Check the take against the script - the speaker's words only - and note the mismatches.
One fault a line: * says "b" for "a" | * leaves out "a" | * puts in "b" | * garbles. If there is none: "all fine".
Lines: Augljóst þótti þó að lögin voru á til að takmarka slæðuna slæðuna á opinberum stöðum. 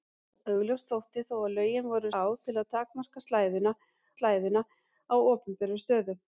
all fine